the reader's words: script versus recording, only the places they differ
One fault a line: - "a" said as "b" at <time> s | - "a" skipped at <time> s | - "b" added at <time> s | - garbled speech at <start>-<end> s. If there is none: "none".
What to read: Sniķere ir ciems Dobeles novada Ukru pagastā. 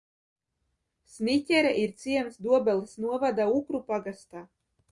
none